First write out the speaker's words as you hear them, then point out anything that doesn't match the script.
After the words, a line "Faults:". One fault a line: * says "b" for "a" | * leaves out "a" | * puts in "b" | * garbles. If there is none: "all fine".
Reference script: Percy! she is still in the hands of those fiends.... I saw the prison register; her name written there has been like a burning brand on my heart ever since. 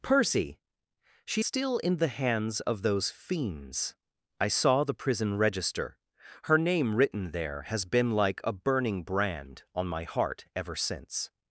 Percy! she still in the hands of those fiends.... I saw the prison register; her name written there has been like a burning brand on my heart ever since.
Faults:
* leaves out "is"